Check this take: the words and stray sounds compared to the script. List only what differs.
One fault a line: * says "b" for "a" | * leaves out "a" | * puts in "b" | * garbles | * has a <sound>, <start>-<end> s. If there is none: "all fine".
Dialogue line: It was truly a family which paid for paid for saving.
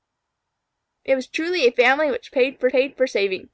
all fine